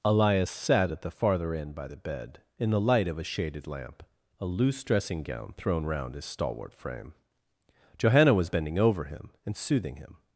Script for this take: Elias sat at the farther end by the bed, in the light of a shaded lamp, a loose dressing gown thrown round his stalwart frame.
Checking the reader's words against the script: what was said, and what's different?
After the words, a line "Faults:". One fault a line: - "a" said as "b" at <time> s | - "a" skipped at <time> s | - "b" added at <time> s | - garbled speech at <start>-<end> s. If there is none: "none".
Elias sat at the farther end by the bed, in the light of a shaded lamp, a loose dressing gown thrown round his stalwart frame. Johanna was bending over him, and soothing him
Faults:
- "Johanna was bending over him and soothing him" added at 8.0 s